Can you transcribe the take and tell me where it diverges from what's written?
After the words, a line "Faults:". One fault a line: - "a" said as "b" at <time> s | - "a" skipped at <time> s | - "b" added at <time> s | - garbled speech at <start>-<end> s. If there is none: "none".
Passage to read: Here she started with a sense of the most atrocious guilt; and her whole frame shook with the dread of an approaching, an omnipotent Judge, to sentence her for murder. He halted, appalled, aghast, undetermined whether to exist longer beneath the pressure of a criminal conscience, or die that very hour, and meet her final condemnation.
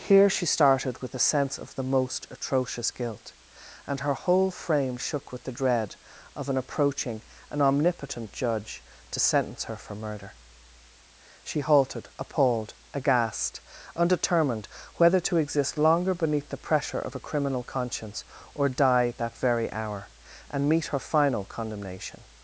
Here she started with a sense of the most atrocious guilt; and her whole frame shook with the dread of an approaching, an omnipotent Judge, to sentence her for murder. She halted, appalled, aghast, undetermined whether to exist longer beneath the pressure of a criminal conscience, or die that very hour, and meet her final condemnation.
Faults:
- "He" said as "She" at 11.4 s